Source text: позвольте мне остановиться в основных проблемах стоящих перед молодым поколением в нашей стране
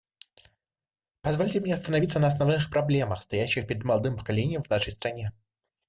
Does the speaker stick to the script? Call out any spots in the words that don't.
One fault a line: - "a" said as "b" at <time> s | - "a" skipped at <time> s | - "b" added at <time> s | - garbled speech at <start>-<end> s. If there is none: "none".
- "в" said as "на" at 2.2 s